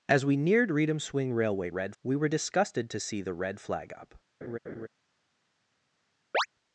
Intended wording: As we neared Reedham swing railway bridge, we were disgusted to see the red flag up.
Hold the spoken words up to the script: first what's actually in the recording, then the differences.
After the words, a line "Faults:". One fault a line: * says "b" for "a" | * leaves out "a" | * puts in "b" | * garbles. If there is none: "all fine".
As we neared Reedham swing railway red, we were disgusted to see the red flag up.
Faults:
* says "red" for "bridge"